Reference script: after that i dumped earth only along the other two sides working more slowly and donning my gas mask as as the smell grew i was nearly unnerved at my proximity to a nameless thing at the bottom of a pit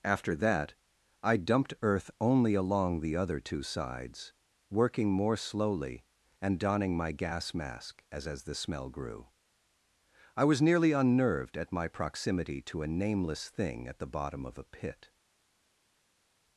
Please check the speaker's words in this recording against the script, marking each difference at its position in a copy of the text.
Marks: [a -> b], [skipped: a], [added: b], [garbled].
after that i dumped earth only along the other two sides working more slowly and donning my gas mask as as the smell grew i was nearly unnerved at my proximity to a nameless thing at the bottom of a pit